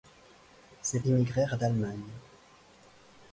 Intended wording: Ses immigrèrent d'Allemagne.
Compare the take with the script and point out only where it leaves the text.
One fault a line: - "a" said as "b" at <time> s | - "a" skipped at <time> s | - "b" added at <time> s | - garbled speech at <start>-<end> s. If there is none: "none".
none